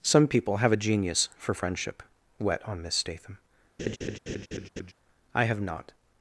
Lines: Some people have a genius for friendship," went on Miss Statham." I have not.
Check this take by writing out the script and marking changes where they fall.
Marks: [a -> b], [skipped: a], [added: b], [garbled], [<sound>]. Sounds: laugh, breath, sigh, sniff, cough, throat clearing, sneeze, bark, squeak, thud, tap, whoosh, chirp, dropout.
Some people have a genius for friendship," [went -> wet] on Miss Statham." [laugh] I have not.